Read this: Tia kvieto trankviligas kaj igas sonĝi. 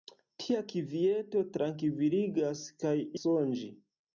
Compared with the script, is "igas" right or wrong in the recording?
wrong